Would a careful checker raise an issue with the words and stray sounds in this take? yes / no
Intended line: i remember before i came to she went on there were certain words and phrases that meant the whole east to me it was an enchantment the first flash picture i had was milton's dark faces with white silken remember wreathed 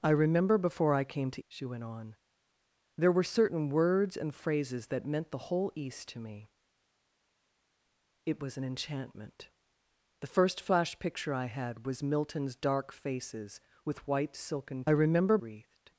no